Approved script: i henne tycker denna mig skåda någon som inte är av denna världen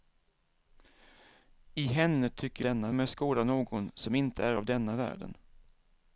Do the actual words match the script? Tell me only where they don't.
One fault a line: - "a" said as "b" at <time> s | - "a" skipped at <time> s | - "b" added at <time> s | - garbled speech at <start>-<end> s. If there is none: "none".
none